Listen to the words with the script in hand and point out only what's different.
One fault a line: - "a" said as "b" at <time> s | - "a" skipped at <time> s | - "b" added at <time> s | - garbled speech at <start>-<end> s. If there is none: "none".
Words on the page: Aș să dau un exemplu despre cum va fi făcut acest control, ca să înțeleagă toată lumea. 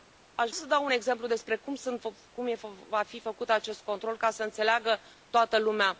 none